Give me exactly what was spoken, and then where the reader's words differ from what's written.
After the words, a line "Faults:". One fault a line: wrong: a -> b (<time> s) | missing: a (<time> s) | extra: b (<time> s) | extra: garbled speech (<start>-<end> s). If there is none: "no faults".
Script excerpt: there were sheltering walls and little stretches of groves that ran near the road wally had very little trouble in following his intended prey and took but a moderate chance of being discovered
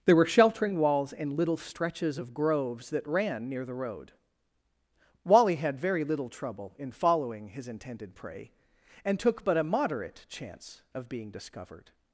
there were sheltering walls and little stretches of groves that ran near the road wally had very little trouble in following his intended prey and took but a moderate chance of being discovered
Faults:
no faults